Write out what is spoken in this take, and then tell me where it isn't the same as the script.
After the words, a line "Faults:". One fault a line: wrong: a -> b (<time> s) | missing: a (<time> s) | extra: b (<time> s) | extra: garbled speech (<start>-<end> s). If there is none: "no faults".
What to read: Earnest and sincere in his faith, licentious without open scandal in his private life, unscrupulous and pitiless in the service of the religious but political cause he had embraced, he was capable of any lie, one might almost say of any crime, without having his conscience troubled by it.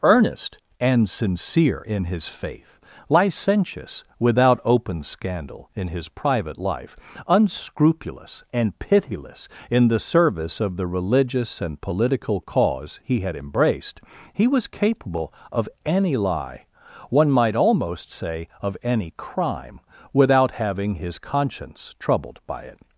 Earnest and sincere in his faith, licentious without open scandal in his private life, unscrupulous and pitiless in the service of the religious and political cause he had embraced, he was capable of any lie, one might almost say of any crime, without having his conscience troubled by it.
Faults:
wrong: but -> and (11.6 s)